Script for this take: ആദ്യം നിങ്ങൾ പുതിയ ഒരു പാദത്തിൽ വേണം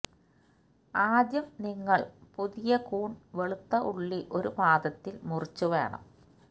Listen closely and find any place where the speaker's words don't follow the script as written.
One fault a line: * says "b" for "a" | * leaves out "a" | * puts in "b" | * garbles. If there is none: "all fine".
* puts in "കൂൺ വെളുത്ത ഉള്ളി"
* puts in "മുറിച്ചു"